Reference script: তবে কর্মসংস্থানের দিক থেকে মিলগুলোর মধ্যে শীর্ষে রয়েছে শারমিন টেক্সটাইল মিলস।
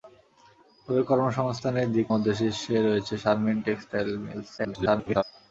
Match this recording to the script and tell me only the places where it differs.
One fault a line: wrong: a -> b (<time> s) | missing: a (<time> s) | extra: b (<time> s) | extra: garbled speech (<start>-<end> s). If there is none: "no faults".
missing: থেকে মিলগুলোর (2.1 s)
extra: garbled speech (4.6-5.2 s)